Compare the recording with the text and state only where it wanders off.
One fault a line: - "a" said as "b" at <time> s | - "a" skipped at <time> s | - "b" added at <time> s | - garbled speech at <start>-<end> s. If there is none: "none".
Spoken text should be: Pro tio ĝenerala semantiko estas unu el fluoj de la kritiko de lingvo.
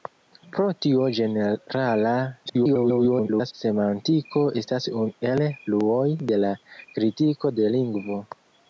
- garbled speech at 2.5-3.5 s